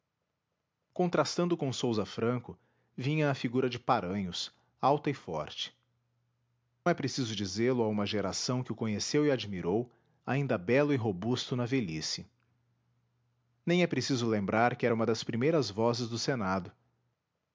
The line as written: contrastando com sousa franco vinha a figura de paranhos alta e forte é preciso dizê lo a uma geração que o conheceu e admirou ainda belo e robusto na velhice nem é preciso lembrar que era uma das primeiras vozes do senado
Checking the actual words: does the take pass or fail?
pass